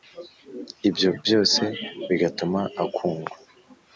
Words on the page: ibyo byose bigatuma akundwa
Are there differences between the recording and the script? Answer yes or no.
no